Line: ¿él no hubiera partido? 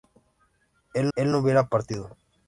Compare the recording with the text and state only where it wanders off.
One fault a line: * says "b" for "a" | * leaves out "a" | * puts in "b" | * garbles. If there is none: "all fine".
* puts in "él"